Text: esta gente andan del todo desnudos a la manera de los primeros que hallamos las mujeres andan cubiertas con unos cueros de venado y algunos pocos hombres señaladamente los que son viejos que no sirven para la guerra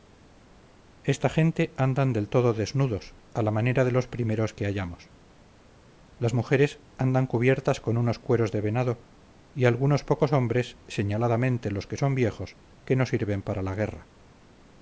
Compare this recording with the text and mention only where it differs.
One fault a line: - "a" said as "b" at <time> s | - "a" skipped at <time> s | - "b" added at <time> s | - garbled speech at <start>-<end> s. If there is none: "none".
none